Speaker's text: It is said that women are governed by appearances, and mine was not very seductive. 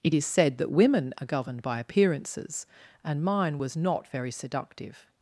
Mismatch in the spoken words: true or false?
false